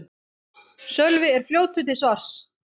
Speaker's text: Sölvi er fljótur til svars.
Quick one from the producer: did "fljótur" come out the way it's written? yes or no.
yes